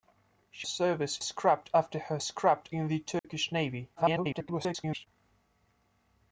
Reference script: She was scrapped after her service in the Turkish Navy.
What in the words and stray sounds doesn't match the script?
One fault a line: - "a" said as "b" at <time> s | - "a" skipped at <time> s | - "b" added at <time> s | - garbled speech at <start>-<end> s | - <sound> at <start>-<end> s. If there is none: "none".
- "was" said as "service" at 0.6 s
- "service" said as "scrapped" at 2.2 s
- dropout at 3.2-3.2 s
- garbled speech at 3.9-5.1 s